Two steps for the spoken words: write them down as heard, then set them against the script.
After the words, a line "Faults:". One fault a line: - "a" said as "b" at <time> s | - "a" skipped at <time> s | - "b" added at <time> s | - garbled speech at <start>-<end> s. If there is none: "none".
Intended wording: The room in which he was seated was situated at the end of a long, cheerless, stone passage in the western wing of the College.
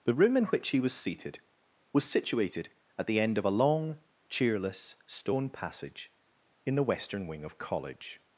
The room in which he was seated was situated at the end of a long, cheerless, stone passage in the western wing of College.
Faults:
- "the" skipped at 7.6 s